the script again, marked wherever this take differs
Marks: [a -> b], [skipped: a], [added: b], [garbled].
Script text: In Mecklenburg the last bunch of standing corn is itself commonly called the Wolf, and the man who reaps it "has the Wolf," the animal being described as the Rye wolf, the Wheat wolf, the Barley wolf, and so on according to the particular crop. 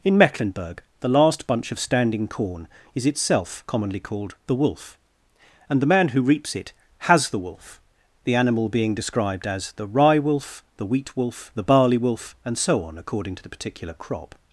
In Mecklenburg the last bunch of standing corn is itself commonly called the Wolf, and the man who reaps it "has the Wolf," the animal being described as the Rye wolf, the Wheat wolf, the Barley wolf, and so on according to the particular crop.